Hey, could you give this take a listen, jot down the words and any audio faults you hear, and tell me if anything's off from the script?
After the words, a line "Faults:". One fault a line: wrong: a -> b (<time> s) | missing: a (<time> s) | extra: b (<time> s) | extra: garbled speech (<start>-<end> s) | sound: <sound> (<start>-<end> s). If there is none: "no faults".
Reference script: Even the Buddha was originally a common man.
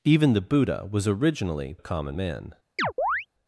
Even the Buddha was originally a common man.
Faults:
sound: chirp (2.8-3.3 s)